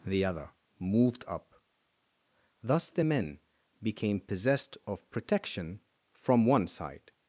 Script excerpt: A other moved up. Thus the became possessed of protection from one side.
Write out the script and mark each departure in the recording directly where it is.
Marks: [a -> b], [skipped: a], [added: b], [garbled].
[A -> The] other moved up. Thus the [added: men] became possessed of protection from one side.